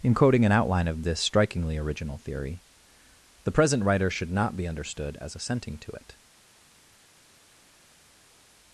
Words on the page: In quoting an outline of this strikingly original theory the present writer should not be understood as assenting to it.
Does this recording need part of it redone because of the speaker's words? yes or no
no